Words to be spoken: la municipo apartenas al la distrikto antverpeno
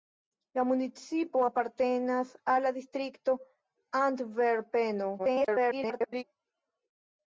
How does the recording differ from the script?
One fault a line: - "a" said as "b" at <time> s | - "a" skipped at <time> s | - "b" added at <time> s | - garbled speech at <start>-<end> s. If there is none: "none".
- garbled speech at 5.2-6.2 s